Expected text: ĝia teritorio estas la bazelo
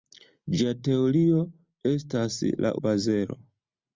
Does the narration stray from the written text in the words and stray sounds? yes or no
no